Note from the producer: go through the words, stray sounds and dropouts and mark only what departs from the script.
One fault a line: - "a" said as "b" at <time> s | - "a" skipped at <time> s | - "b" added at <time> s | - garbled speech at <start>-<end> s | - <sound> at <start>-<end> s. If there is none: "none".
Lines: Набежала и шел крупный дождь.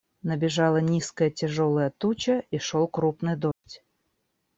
- "низкая тяжелая туча" added at 0.8 s
- dropout at 3.5-3.6 s